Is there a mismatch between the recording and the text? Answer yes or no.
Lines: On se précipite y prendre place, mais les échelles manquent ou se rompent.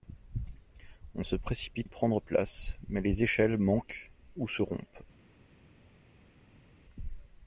no